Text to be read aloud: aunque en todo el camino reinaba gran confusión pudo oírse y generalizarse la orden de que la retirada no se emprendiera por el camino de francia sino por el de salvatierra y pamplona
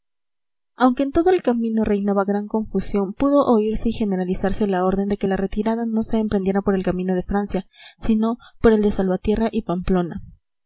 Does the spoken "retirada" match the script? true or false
true